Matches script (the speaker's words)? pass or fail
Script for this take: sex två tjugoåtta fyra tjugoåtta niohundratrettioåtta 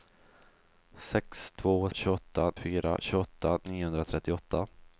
pass